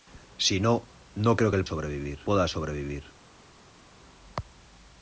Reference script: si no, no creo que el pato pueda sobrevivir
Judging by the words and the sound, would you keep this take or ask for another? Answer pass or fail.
fail